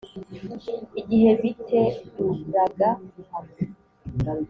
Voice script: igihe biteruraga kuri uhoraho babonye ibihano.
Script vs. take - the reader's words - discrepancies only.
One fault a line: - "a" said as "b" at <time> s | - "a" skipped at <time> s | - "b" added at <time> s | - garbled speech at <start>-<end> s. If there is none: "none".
- "kuri uhoraho babonye" skipped at 2.9 s